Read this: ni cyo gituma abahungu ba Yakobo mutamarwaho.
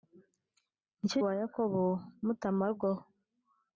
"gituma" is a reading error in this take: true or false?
true